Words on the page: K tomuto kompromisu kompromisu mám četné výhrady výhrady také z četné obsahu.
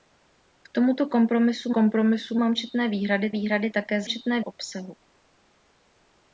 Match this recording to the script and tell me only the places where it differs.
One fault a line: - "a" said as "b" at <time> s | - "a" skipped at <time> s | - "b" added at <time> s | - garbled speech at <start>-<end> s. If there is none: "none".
none